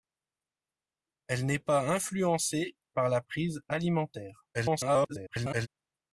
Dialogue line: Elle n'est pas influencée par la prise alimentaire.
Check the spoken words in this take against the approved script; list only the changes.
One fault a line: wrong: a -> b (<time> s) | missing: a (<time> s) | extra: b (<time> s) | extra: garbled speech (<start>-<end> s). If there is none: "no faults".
extra: garbled speech (4.5-5.7 s)